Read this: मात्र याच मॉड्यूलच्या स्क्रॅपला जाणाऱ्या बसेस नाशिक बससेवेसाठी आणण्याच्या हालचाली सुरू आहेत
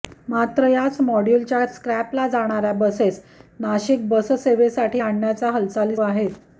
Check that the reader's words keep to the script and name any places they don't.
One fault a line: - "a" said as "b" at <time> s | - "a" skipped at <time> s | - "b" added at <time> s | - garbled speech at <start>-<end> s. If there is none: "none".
- "सुरू" skipped at 6.0 s